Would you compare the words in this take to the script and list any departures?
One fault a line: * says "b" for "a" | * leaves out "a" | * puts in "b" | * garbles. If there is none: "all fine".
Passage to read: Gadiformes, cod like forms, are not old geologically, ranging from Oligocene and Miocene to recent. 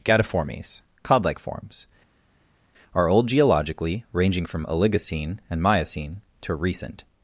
* leaves out "not"